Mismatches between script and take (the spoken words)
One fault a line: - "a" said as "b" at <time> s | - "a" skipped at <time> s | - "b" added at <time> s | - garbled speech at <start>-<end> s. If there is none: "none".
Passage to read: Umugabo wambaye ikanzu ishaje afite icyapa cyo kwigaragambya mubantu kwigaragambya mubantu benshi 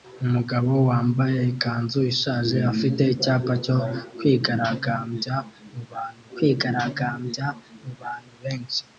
none